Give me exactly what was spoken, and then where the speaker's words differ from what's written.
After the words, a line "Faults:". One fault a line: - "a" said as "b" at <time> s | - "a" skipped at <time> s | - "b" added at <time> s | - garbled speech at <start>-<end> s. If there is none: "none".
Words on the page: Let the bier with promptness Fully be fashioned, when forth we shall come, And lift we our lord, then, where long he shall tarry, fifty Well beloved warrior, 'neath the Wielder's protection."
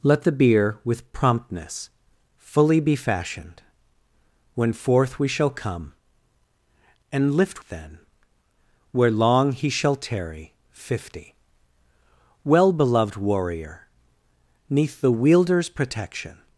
Let the bier with promptness Fully be fashioned, when forth we shall come, And lift then, where long he shall tarry, fifty Well beloved warrior, 'neath the Wielder's protection."
Faults:
- "we our lord" skipped at 7.6 s